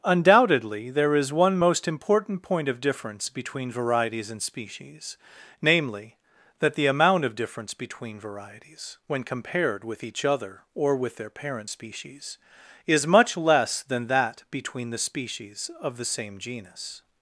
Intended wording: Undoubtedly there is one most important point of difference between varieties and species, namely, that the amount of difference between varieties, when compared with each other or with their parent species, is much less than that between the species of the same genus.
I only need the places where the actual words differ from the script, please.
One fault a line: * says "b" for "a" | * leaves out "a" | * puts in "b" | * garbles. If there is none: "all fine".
all fine